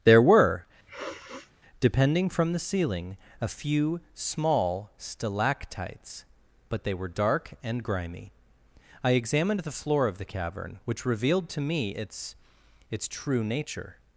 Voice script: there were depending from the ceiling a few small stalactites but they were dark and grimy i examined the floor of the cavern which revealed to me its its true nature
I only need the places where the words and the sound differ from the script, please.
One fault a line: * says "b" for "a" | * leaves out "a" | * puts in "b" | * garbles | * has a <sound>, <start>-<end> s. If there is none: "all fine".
* has a sniff, 0.9-1.5 s